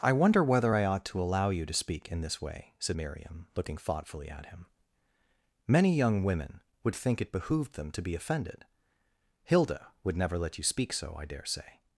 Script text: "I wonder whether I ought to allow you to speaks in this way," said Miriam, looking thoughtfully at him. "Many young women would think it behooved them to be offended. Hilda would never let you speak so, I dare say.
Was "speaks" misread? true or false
true